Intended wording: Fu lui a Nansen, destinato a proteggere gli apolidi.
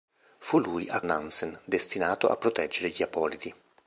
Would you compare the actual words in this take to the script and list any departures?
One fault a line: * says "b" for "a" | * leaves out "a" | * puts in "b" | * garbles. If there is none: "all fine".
all fine